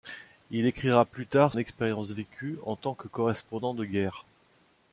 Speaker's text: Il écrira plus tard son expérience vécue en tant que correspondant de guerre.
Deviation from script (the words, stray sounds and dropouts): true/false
true